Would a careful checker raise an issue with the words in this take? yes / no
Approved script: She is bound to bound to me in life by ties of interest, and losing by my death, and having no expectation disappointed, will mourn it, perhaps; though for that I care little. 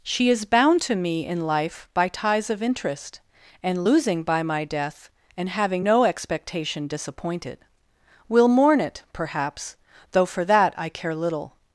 yes